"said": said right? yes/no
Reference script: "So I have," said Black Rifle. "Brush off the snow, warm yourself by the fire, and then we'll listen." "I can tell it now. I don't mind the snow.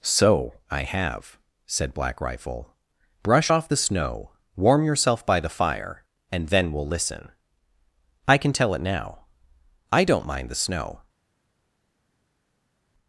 yes